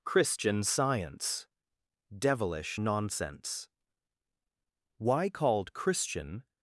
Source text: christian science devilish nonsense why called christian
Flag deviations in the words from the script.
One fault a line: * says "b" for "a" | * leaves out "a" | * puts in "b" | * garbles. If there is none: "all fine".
all fine